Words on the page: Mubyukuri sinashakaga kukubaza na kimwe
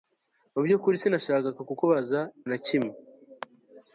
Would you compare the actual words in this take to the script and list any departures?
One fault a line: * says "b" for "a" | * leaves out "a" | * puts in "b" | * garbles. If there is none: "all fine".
all fine